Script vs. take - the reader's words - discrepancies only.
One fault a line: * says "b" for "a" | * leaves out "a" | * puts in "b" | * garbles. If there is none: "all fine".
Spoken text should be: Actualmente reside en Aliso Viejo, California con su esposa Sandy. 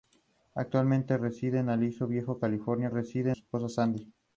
* says "reside" for "con"